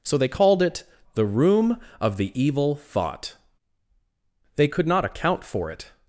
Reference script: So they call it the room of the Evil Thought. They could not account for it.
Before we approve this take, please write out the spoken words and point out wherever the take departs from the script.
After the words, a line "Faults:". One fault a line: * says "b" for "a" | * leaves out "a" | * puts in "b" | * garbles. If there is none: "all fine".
So they called it the room of the Evil Thought. They could not account for it.
Faults:
* says "called" for "call"